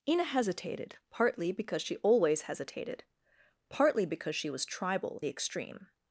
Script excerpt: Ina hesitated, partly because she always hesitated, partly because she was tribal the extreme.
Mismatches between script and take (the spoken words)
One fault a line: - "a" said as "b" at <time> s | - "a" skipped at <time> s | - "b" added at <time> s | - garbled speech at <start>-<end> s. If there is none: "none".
none